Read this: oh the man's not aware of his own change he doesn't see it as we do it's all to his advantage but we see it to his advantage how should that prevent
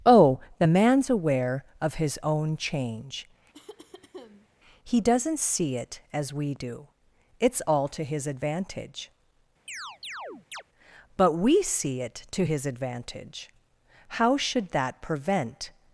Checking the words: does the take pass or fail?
fail